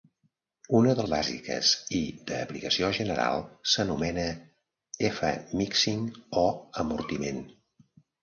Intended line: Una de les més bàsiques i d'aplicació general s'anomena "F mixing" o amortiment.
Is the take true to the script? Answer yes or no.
no